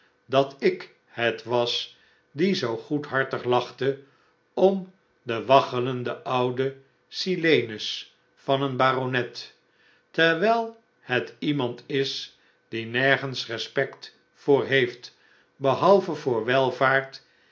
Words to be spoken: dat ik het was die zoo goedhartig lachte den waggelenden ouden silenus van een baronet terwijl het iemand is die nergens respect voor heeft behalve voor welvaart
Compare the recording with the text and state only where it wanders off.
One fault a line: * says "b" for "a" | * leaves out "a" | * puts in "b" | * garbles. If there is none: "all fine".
* puts in "om"